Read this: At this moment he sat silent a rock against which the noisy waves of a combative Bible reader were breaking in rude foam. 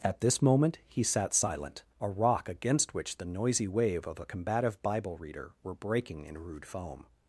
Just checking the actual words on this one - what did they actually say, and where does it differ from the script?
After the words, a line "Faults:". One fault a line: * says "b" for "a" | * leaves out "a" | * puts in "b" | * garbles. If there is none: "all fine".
At this moment he sat silent a rock against which the noisy wave of a combative Bible reader were breaking in rude foam.
Faults:
* says "wave" for "waves"